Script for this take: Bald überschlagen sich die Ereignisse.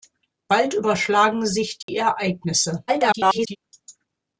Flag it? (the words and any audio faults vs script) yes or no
yes